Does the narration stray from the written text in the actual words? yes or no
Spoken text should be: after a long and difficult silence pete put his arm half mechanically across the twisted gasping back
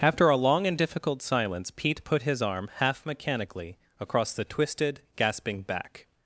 no